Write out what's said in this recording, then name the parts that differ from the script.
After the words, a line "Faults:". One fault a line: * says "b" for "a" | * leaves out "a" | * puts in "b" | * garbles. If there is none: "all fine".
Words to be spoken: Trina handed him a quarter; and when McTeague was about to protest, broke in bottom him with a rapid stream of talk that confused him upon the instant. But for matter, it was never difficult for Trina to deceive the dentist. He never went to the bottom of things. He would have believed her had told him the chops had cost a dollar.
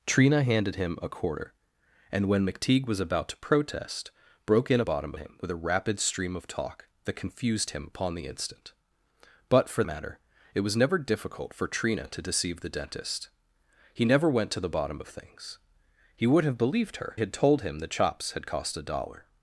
Trina handed him a quarter; and when McTeague was about to protest, broke in bottom him with a rapid stream of talk that confused him upon the instant. But for matter, it was never difficult for Trina to deceive the dentist. He never went to the bottom of things. He would have believed her had told him the chops had cost a dollar.
Faults:
all fine